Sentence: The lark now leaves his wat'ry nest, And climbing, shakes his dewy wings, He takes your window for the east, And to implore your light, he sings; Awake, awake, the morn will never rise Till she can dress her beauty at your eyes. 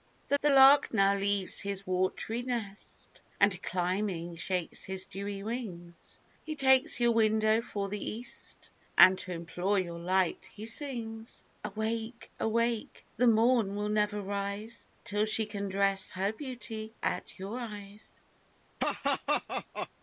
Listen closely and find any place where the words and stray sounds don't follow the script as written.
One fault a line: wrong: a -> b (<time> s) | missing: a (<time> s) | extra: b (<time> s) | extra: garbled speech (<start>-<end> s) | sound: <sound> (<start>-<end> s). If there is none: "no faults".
extra: the (0.4 s)
sound: laugh (18.8-19.9 s)